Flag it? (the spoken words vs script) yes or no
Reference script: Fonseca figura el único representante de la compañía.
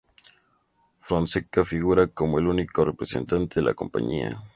yes